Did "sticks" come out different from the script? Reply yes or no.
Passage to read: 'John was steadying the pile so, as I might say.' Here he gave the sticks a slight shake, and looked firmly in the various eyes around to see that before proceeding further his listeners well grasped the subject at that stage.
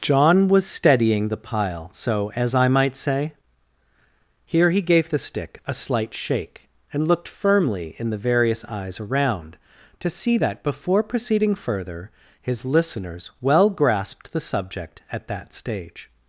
yes